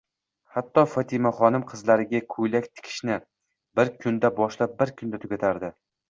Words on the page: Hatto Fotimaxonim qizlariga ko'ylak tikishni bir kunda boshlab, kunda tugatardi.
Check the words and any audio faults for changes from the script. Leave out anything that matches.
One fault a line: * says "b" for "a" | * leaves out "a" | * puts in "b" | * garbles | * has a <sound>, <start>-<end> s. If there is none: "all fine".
* puts in "bir"